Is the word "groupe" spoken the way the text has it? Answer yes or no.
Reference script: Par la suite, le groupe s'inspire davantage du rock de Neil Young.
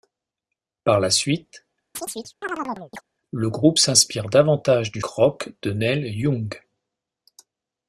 yes